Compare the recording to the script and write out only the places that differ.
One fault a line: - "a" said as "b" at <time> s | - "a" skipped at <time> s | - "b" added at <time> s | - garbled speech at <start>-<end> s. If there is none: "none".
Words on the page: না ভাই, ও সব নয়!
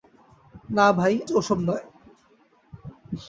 none